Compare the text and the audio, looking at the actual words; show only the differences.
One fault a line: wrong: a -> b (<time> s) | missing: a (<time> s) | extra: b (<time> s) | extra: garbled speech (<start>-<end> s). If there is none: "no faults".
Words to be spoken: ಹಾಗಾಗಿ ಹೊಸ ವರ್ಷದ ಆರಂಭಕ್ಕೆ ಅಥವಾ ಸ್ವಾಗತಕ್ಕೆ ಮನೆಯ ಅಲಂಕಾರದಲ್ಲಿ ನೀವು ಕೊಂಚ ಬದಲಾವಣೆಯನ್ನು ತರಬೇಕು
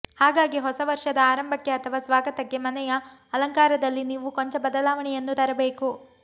no faults